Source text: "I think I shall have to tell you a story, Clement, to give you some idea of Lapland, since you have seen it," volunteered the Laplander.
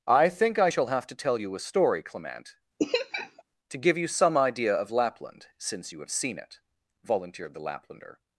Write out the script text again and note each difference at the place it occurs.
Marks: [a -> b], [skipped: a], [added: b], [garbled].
"I think I shall have to tell you a story, Clement, to give you some idea of Lapland, since you have seen it," volunteered the Laplander.